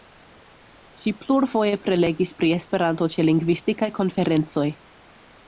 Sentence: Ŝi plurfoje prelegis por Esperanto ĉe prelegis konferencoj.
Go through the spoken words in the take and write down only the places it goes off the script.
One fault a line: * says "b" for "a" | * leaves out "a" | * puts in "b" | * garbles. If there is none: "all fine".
* says "pri" for "por"
* says "lingvistikaj" for "prelegis"